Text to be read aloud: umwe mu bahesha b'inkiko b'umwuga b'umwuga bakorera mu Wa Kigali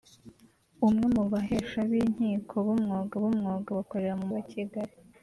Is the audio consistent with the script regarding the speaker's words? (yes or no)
yes